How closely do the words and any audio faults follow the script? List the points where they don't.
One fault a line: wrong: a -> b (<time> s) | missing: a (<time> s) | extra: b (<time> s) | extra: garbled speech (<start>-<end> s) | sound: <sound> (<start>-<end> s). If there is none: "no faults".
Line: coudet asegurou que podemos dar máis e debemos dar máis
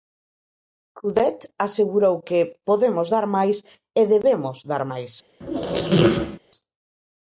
sound: squeak (5.4-6.4 s)